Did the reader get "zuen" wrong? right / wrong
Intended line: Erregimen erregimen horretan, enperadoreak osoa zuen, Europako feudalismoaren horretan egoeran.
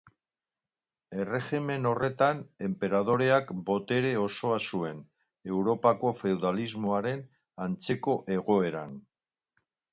right